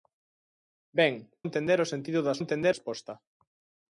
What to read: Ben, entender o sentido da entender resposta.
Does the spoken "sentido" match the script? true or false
true